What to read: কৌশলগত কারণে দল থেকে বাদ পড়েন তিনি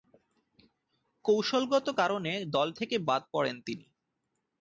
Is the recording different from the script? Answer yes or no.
no